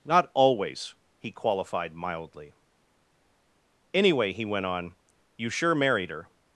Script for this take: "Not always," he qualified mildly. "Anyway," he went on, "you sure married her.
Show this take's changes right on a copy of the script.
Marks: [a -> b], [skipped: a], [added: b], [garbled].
"Not always," he qualified mildly. "Anyway," he went on, "you sure married her.